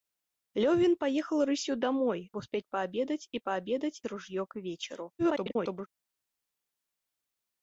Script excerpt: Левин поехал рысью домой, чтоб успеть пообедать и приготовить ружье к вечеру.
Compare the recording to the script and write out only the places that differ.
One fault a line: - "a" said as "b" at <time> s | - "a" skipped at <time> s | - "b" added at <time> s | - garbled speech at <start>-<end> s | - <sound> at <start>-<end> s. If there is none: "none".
- "чтоб" skipped at 2.3 s
- "приготовить" said as "пообедать" at 3.4 s
- garbled speech at 5.2-5.9 s